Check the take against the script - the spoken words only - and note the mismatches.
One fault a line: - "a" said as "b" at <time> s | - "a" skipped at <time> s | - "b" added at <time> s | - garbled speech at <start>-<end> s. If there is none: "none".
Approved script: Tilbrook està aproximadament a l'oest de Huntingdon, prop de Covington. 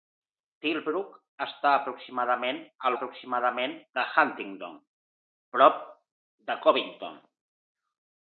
- "l'oest" said as "aproximadament" at 3.0 s